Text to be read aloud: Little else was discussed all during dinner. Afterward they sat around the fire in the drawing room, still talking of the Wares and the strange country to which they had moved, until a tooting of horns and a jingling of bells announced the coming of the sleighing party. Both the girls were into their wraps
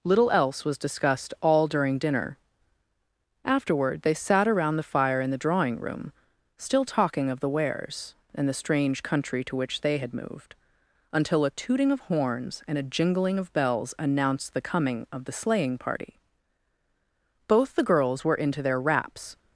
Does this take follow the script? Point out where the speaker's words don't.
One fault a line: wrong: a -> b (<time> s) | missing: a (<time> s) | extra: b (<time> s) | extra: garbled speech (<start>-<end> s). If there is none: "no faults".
no faults